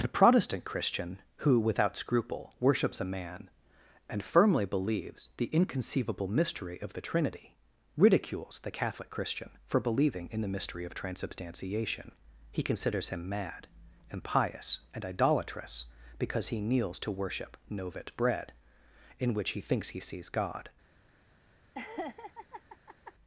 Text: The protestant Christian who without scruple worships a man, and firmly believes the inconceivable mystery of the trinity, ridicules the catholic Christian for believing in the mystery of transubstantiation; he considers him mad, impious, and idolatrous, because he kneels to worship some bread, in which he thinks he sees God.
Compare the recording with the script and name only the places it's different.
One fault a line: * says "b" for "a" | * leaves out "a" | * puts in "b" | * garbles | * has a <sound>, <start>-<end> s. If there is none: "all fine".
* says "novit" for "some"
* has a laugh, 21.7-23.1 s